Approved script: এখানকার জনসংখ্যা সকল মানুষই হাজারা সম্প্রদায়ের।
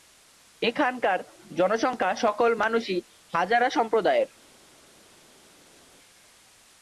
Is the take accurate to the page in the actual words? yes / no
yes